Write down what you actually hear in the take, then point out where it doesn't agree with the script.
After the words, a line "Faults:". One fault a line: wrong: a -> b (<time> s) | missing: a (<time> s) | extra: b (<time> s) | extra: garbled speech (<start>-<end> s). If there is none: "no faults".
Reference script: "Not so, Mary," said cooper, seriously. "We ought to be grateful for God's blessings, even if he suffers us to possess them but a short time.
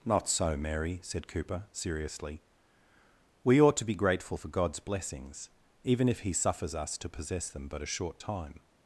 "Not so, Mary," said cooper, seriously. "We ought to be grateful for God's blessings, even if he suffers us to possess them but a short time.
Faults:
no faults